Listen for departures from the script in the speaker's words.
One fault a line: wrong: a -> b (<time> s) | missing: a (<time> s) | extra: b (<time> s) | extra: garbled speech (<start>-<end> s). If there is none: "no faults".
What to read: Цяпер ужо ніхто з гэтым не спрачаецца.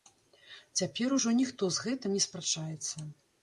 no faults